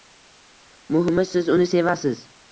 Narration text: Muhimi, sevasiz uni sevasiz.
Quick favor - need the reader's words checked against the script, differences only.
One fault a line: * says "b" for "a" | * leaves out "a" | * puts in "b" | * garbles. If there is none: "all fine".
* says "siz" for "sevasiz"